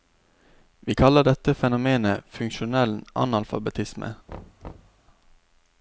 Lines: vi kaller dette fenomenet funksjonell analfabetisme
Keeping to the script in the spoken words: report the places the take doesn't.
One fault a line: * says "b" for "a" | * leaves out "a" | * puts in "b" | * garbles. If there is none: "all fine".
all fine